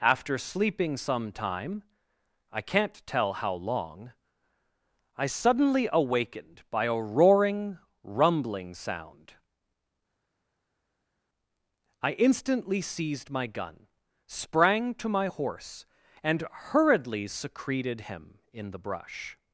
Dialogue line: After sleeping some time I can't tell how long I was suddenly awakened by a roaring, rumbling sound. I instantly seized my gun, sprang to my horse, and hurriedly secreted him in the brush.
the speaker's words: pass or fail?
fail